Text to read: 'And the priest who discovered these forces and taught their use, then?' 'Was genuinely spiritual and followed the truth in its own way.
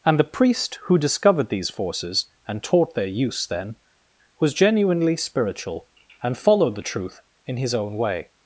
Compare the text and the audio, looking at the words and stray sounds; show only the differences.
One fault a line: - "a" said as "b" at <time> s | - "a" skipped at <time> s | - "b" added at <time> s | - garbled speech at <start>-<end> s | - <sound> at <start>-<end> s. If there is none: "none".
- "its" said as "his" at 7.6 s